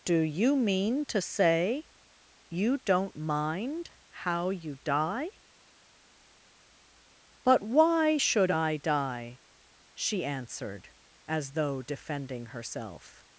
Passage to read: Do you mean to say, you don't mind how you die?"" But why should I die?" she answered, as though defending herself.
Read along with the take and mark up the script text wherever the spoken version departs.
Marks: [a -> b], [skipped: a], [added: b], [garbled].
Do you mean to say, you don't mind how you die?"" But why should I die?" she answered, as though defending herself.